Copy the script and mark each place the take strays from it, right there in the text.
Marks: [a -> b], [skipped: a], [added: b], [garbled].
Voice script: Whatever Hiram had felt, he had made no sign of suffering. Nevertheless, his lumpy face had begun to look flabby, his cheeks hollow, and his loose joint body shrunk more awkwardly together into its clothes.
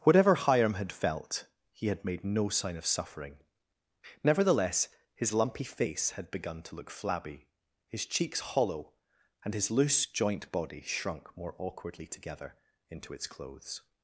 Whatever Hiram had felt, he had made no sign of suffering. Nevertheless, his lumpy face had begun to look flabby, his cheeks hollow, and his loose joint body shrunk more awkwardly together into its clothes.